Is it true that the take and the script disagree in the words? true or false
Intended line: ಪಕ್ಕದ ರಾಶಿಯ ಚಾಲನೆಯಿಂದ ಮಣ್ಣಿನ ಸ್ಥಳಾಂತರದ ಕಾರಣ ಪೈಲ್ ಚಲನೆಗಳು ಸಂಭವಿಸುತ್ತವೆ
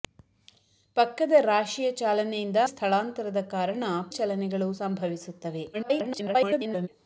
true